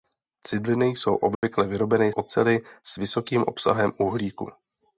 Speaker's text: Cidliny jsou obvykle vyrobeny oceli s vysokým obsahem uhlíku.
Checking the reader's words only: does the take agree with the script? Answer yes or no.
yes